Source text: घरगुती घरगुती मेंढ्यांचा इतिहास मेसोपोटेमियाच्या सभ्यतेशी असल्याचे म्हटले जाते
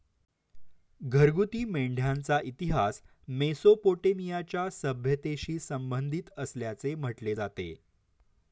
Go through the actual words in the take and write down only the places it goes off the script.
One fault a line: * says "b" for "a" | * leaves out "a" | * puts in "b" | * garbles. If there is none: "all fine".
* leaves out "घरगुती"
* puts in "संबंधित"